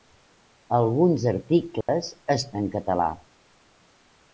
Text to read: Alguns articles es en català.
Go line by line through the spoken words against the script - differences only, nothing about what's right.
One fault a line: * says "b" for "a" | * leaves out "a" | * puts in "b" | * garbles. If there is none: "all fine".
all fine